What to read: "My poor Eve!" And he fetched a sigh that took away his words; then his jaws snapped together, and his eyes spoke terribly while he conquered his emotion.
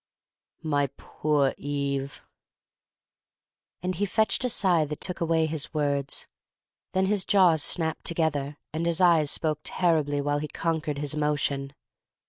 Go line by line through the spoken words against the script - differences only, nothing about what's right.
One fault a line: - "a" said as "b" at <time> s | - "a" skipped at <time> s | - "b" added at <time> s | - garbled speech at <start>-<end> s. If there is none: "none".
none